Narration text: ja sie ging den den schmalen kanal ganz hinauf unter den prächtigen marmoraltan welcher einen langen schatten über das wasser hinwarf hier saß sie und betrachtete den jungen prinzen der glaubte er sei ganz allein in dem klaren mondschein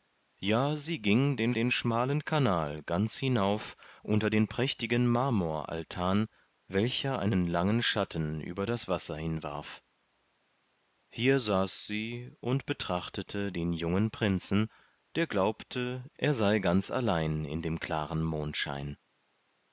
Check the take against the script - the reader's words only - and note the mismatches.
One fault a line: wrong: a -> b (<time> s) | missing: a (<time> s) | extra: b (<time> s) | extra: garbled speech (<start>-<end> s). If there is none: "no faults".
no faults